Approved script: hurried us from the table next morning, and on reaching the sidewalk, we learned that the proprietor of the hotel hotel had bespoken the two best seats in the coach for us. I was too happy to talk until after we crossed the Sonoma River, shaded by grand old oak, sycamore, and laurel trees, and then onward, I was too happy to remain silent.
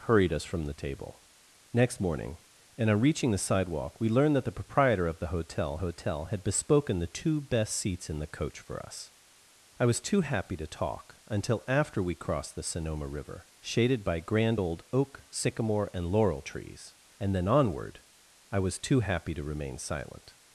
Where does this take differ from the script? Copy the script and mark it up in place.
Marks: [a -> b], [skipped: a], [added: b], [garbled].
hurried us from the table next morning, and on reaching the sidewalk, we learned that the proprietor of the hotel hotel had bespoken the two best seats in the coach for us. I was too happy to talk until after we crossed the Sonoma River, shaded by grand old oak, sycamore, and laurel trees, and then onward, I was too happy to remain silent.